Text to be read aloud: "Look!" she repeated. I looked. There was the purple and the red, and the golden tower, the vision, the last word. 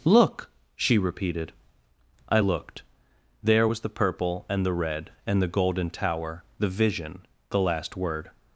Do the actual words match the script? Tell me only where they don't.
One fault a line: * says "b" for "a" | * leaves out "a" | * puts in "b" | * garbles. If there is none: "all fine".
all fine